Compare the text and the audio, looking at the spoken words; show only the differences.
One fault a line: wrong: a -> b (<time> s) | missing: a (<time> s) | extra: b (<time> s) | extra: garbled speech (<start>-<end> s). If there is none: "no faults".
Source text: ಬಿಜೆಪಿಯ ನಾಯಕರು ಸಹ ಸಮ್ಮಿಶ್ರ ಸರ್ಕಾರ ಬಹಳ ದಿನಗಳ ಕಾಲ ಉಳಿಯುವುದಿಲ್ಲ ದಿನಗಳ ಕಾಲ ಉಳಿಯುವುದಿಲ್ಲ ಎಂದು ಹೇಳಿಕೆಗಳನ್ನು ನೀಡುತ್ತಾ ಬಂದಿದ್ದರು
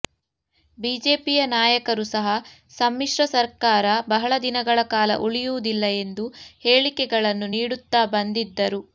missing: ದಿನಗಳ ಕಾಲ ಉಳಿಯುವುದಿಲ್ಲ (5.8 s)